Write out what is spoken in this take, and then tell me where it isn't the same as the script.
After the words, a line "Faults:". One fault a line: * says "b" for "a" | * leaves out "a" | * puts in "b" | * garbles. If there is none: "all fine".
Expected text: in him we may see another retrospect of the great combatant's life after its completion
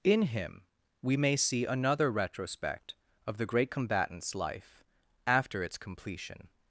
in him we may see another retrospect of the great combatant's life after its completion
Faults:
all fine